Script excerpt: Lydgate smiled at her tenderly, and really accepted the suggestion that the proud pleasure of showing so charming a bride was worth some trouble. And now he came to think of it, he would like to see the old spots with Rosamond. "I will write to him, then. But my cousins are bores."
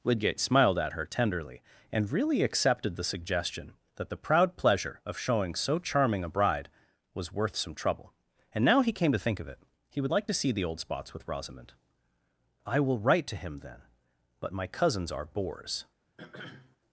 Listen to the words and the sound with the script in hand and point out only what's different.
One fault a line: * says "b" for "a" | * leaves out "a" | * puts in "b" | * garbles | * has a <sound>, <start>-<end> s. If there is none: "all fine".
* has a throat clearing, 16.2-16.8 s